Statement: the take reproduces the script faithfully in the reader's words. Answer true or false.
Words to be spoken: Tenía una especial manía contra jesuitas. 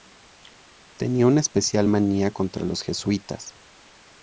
false